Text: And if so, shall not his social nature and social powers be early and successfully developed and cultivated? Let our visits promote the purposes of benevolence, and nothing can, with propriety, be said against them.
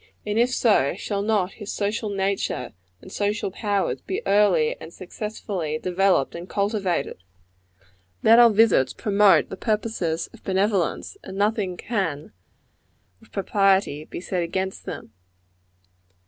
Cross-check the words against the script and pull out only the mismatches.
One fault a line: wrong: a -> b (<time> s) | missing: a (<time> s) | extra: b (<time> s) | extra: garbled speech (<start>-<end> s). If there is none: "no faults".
no faults